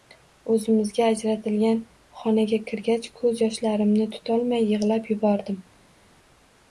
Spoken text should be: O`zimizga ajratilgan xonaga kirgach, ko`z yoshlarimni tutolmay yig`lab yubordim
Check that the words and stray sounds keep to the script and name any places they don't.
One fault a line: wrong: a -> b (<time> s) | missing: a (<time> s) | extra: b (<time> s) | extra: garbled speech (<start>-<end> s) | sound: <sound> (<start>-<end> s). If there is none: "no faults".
no faults